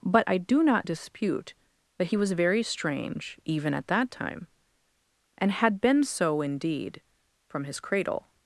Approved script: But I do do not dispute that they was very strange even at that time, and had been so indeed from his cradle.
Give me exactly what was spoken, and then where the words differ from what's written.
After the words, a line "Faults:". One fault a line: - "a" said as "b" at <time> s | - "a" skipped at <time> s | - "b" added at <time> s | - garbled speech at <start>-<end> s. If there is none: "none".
But I do not dispute that he was very strange even at that time, and had been so indeed from his cradle.
Faults:
- "do" skipped at 0.6 s
- "they" said as "he" at 2.1 s